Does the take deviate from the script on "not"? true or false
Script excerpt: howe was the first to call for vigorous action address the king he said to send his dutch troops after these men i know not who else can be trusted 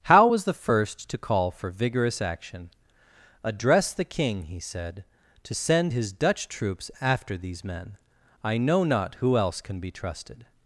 false